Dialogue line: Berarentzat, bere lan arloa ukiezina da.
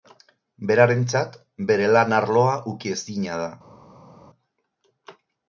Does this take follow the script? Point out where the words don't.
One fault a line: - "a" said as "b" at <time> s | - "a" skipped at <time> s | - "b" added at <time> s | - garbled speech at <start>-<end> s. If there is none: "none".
none